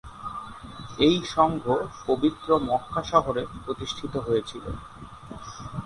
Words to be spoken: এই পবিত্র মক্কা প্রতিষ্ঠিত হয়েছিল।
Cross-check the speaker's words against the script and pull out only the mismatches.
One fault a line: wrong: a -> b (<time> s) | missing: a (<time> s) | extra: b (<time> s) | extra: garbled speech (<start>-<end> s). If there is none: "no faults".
extra: সংঘ (1.4 s)
extra: শহরে (3.1 s)